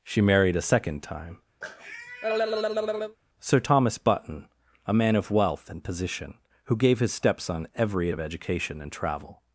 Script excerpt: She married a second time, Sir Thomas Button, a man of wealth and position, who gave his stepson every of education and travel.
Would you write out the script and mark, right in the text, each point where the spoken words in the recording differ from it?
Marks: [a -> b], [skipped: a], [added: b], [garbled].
She married a second time, Sir Thomas Button, a man of wealth and position, who gave his stepson every of education and travel.